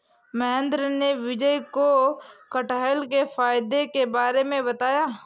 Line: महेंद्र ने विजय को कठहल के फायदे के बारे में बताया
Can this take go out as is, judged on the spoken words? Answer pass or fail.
pass